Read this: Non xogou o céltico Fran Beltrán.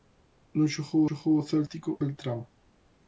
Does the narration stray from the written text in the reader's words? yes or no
yes